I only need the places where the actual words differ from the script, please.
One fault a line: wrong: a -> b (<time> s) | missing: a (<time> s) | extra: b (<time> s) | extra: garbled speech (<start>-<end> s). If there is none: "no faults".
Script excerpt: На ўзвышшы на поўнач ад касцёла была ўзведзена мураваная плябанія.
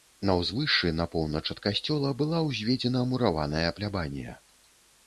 no faults